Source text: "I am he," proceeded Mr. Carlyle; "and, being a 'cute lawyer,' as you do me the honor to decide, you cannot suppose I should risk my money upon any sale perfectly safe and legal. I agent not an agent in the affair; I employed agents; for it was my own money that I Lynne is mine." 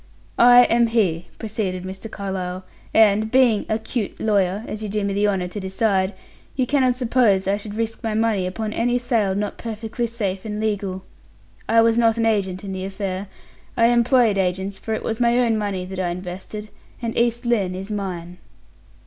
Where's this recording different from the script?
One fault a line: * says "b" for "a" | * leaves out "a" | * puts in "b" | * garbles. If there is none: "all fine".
* puts in "not"
* says "was" for "agent"
* puts in "invested and East"